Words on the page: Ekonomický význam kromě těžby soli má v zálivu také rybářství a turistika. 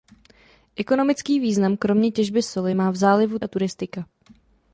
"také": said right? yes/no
no